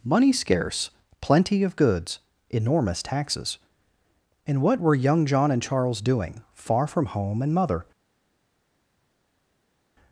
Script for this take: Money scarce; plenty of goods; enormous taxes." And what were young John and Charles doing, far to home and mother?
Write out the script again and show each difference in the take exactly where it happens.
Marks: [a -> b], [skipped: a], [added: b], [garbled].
Money scarce; plenty of goods; enormous taxes." And what were young John and Charles doing, far [to -> from] home and mother?